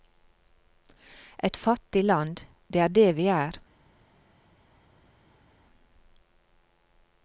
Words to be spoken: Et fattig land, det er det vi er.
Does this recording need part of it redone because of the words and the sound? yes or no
no